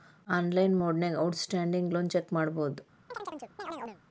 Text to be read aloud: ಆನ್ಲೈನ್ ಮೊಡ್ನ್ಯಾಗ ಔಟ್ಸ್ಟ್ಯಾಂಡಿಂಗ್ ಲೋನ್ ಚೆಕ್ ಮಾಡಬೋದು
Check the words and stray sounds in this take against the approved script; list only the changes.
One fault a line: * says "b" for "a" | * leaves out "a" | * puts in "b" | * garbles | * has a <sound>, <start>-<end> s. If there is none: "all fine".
* has a chirp, 3.1-4.0 s